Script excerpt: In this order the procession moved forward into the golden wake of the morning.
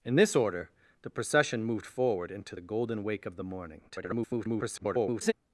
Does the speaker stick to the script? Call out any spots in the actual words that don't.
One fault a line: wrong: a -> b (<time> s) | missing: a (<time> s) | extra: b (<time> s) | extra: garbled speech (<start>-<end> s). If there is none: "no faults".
extra: garbled speech (3.9-5.3 s)